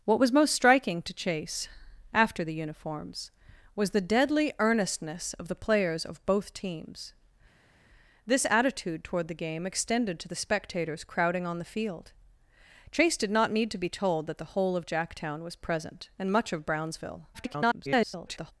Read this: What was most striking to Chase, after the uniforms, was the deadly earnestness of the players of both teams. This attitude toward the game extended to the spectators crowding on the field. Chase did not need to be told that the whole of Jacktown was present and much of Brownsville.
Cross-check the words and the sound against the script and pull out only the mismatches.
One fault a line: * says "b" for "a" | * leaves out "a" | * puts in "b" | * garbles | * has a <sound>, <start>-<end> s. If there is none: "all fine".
* garbles